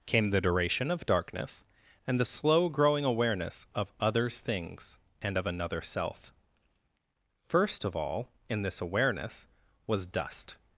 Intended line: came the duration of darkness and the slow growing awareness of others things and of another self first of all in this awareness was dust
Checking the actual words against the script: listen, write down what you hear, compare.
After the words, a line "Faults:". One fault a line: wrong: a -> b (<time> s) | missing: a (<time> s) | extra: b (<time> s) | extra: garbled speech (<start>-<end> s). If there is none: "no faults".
came the duration of darkness and the slow growing awareness of others things and of another self first of all in this awareness was dust
Faults:
no faults